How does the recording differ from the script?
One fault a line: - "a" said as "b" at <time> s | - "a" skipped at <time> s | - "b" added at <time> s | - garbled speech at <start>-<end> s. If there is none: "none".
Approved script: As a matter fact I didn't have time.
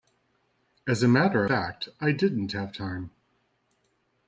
none